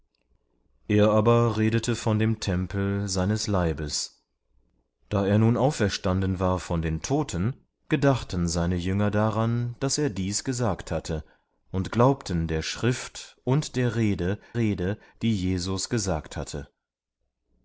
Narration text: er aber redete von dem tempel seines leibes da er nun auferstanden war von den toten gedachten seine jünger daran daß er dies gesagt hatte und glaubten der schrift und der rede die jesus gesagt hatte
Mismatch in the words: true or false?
true